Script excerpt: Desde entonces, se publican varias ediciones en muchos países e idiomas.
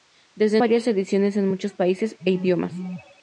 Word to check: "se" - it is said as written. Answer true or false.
false